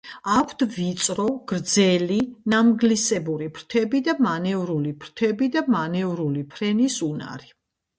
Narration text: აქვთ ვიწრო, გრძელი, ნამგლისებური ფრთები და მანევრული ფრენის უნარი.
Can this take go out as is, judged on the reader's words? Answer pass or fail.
fail